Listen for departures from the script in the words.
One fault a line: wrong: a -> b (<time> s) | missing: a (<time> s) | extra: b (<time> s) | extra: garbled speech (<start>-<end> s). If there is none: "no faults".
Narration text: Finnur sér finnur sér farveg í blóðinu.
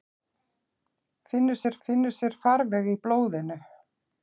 no faults